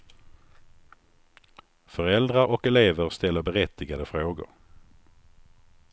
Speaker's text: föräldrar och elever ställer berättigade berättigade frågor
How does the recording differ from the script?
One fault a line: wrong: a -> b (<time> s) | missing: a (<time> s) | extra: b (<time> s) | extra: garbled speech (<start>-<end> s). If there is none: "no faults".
missing: berättigade (4.0 s)